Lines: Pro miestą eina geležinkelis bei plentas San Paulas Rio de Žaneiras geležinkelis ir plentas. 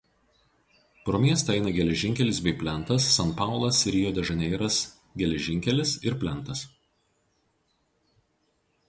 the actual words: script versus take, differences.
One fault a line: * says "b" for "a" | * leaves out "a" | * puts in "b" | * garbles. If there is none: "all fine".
all fine